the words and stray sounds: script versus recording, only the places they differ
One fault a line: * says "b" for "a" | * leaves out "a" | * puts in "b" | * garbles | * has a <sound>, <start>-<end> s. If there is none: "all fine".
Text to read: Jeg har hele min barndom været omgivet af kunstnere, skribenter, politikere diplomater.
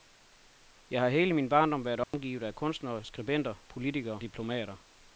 * has a dropout, 2.0-2.1 s